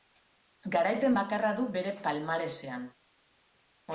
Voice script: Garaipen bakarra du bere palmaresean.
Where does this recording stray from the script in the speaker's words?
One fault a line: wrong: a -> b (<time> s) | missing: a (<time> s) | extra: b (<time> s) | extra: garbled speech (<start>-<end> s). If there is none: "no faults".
no faults